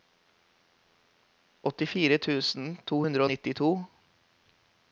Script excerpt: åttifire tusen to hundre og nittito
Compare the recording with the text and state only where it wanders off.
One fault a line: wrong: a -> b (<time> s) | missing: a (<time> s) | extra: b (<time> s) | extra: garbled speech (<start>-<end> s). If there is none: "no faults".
no faults